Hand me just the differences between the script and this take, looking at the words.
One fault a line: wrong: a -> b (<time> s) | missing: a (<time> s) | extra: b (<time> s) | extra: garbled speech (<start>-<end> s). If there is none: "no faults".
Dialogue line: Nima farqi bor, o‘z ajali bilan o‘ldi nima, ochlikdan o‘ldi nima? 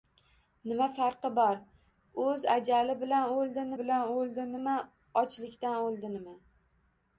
extra: bilan o‘ldi (3.8 s)